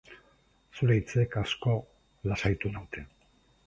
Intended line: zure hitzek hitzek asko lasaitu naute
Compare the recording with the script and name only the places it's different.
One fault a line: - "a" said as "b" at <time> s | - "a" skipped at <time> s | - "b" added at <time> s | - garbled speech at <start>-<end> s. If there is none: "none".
- "hitzek" skipped at 1.4 s